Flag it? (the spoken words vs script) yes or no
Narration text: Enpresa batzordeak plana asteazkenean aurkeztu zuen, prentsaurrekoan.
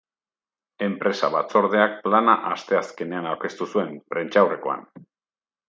no